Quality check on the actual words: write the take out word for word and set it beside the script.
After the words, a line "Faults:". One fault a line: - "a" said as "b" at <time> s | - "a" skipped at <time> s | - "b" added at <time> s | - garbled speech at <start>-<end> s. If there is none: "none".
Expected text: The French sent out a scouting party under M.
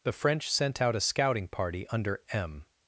The French sent out a scouting party under M.
Faults:
none